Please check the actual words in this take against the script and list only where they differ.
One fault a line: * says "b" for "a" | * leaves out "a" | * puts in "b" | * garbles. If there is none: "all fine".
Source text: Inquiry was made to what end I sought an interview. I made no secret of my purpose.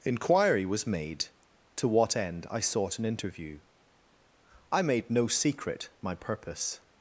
* leaves out "of"